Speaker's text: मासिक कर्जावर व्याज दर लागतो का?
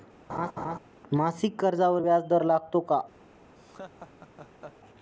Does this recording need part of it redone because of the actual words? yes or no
no